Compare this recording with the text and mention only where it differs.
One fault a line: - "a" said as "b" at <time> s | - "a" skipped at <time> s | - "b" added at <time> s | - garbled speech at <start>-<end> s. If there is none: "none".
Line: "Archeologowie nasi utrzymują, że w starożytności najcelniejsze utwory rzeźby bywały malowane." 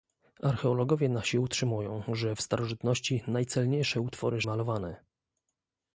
- "rzeźby bywały" skipped at 4.4 s